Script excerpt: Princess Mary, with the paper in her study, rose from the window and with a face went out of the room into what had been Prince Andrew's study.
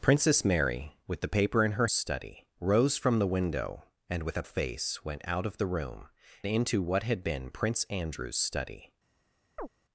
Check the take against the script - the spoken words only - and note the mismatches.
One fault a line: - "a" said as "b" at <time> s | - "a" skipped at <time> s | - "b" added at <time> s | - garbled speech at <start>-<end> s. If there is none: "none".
none